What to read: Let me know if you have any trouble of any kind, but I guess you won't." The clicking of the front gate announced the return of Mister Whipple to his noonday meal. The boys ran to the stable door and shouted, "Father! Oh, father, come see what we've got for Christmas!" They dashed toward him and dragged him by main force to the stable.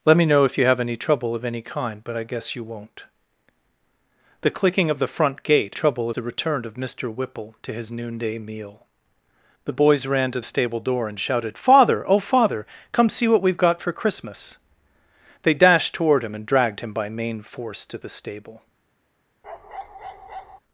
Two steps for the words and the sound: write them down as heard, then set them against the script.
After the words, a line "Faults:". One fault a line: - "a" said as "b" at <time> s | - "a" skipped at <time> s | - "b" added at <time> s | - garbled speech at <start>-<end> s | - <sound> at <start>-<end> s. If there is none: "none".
Let me know if you have any trouble of any kind, but I guess you won't." The clicking of the front gate trouble the return of Mister Whipple to his noonday meal. The boys ran to stable door and shouted, "Father! Oh, father, come see what we've got for Christmas!" They dashed toward him and dragged him by main force to the stable.
Faults:
- "announced" said as "trouble" at 5.7 s
- "the" skipped at 10.4 s
- bark at 19.4-20.6 s